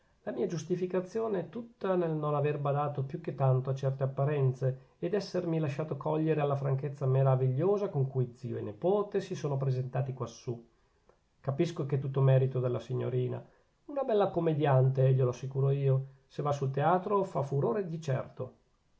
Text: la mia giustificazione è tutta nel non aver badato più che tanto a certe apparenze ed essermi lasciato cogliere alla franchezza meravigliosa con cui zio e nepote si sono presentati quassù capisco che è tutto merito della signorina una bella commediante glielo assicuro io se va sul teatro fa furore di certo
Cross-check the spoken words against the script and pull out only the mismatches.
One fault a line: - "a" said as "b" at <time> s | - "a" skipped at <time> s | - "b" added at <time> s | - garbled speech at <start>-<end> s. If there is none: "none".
none